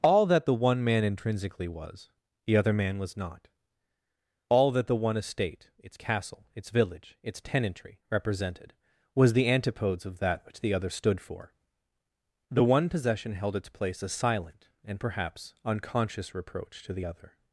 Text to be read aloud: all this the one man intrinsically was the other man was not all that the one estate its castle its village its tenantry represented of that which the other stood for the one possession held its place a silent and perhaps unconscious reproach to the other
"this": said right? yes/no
no